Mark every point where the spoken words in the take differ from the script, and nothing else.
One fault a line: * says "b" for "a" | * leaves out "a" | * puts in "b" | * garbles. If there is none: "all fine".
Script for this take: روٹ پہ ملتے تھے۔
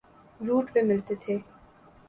all fine